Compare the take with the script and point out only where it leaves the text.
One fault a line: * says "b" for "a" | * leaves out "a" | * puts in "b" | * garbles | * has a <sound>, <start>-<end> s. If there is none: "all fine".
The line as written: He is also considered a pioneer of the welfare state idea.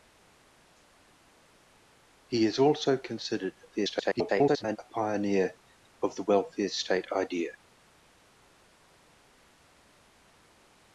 * garbles